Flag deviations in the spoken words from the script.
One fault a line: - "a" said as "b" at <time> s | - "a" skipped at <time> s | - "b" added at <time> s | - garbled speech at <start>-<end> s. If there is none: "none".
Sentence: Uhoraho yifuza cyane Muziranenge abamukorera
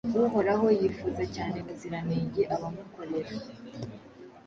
none